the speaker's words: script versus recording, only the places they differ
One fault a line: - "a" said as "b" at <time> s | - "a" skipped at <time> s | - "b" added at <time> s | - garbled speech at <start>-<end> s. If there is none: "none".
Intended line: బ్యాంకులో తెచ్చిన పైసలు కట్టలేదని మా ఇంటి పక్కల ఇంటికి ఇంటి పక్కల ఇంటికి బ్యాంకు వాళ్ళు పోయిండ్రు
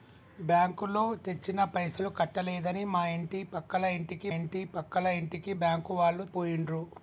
none